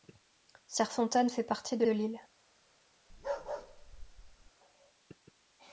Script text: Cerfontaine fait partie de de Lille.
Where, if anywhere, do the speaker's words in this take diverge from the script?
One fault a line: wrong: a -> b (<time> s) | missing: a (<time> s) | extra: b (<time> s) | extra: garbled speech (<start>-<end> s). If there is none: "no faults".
no faults